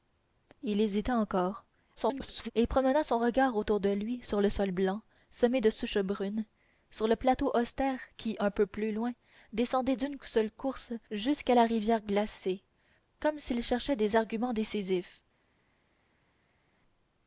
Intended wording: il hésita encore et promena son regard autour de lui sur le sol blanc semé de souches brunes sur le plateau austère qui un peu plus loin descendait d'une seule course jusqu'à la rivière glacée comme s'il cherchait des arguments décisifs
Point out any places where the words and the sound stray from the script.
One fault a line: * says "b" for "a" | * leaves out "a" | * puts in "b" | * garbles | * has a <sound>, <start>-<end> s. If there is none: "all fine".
* garbles